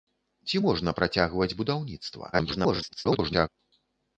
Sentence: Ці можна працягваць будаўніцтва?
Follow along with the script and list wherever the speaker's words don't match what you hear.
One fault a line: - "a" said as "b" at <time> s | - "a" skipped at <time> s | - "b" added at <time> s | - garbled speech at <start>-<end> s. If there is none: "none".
- garbled speech at 2.3-3.5 s